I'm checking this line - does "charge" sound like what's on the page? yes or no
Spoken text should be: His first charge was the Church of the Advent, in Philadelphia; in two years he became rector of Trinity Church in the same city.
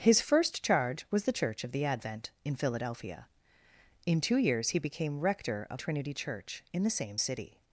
yes